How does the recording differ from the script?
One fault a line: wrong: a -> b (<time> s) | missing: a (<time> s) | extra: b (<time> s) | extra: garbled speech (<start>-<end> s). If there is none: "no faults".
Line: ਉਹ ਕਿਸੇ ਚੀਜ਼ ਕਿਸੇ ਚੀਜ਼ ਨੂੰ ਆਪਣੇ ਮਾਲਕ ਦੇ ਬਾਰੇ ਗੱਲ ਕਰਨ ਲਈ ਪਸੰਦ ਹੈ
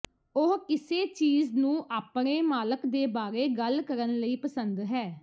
missing: ਕਿਸੇ ਚੀਜ਼ (1.5 s)